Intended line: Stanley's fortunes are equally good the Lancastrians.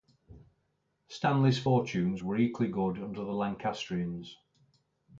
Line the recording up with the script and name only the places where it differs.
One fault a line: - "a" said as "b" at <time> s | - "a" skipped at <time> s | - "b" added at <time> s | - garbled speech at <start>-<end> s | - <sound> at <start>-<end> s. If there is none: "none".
- "are" said as "were" at 2.2 s
- "under" added at 3.0 s